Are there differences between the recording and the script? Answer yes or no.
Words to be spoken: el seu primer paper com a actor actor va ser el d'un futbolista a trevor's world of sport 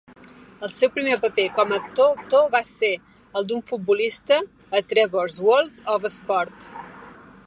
no